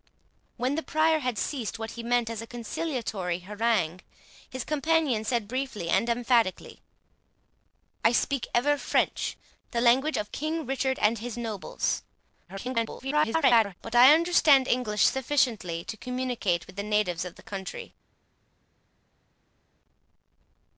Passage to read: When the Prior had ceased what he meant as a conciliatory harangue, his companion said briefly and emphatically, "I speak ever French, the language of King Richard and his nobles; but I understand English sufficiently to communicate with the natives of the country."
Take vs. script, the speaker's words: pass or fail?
fail